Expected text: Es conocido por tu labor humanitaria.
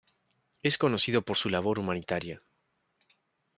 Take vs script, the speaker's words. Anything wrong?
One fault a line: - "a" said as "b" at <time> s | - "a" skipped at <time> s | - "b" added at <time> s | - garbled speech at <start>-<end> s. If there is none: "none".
- "tu" said as "su" at 1.4 s